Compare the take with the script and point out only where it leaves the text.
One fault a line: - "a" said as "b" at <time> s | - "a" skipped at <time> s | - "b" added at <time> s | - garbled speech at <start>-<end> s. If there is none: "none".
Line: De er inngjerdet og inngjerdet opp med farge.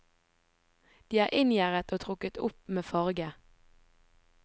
- "inngjerdet" said as "trukket" at 2.0 s